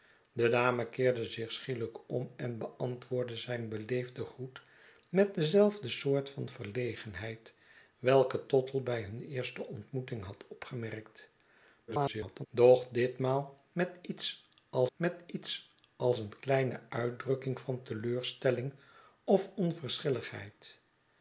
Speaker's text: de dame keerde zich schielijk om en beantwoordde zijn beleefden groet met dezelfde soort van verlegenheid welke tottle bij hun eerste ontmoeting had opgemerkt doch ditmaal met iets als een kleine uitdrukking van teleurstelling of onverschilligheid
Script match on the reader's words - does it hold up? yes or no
no